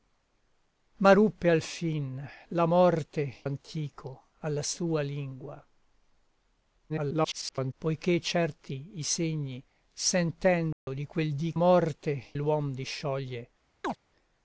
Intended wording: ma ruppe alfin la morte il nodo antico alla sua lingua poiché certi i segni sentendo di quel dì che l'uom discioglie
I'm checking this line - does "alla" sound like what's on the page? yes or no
yes